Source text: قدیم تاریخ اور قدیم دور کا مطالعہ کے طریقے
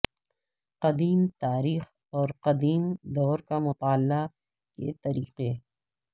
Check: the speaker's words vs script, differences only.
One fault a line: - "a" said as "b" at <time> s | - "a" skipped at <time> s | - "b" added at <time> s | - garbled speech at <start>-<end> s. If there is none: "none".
none